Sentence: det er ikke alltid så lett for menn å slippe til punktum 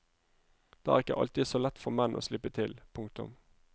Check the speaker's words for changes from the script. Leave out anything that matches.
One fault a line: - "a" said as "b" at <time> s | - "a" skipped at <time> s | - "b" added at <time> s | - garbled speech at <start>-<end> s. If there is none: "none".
none